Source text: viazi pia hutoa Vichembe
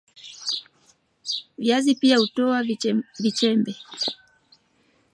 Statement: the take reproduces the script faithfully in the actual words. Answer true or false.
true